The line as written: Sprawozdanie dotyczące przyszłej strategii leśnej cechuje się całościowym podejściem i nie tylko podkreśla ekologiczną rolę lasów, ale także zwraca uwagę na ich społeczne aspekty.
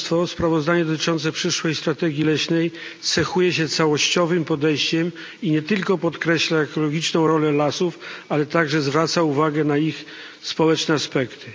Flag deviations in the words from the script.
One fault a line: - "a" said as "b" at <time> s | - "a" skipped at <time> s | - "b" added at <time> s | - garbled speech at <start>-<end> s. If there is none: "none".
none